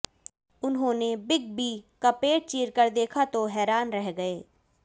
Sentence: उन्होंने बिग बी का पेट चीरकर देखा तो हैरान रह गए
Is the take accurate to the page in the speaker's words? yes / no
yes